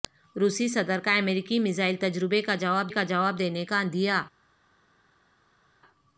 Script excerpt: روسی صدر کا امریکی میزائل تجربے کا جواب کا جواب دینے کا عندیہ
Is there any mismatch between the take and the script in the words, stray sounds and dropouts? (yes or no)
no